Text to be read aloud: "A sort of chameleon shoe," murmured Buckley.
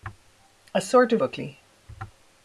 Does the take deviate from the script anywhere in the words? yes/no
yes